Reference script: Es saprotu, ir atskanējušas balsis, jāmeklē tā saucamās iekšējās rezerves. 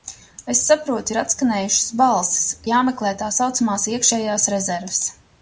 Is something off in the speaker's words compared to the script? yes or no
no